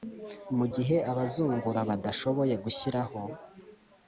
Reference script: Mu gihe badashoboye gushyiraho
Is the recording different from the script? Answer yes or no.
yes